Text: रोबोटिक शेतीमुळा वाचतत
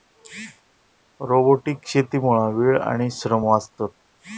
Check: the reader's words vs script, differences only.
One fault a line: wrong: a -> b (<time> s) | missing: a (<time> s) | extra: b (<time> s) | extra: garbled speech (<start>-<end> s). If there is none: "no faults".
extra: वेळ आणि श्रम (2.6 s)